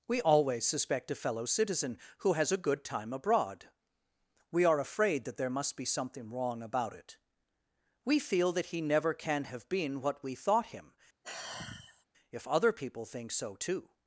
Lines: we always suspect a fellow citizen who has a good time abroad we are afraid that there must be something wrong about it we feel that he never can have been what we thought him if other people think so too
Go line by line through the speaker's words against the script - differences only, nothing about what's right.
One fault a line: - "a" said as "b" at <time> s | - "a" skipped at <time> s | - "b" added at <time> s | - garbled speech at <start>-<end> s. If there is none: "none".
none